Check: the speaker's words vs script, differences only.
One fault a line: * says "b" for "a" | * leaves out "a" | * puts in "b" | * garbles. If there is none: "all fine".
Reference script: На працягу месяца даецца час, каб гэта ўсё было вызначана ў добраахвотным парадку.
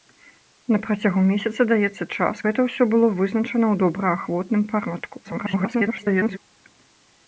* leaves out "каб"
* garbles